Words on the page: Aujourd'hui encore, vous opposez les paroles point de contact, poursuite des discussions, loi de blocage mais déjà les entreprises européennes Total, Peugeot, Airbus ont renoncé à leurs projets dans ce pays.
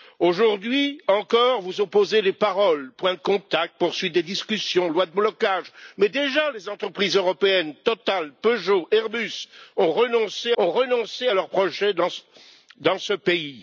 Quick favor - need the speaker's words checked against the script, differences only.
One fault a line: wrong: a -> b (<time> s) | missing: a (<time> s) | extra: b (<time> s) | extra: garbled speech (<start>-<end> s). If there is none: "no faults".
extra: ont renoncé (10.6 s)